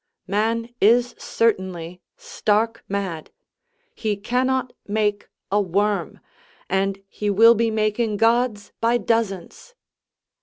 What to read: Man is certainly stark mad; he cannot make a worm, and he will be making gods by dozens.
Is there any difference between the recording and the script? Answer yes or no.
no